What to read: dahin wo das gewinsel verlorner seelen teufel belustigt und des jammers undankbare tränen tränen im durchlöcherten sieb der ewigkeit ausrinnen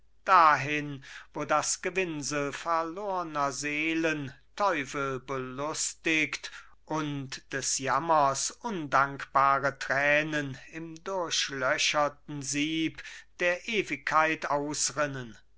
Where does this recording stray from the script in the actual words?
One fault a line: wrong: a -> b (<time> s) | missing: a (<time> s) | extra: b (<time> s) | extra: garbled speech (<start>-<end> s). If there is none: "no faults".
missing: tränen (10.6 s)